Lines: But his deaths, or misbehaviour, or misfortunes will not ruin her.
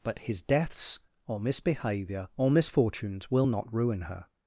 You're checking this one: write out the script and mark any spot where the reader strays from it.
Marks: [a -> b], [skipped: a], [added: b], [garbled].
But his deaths, or misbehaviour, or misfortunes will not ruin her.